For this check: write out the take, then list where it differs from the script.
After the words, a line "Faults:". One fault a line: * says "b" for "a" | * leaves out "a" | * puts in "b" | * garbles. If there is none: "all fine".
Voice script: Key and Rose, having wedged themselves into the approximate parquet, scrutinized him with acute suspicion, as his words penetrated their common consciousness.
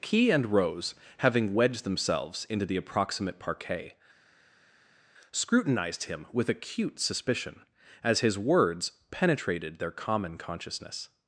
Key and Rose, having wedged themselves into the approximate parquet, scrutinized him with acute suspicion, as his words penetrated their common consciousness.
Faults:
all fine